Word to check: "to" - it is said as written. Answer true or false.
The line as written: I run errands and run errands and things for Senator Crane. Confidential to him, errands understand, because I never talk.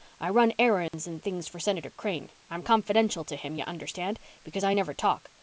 true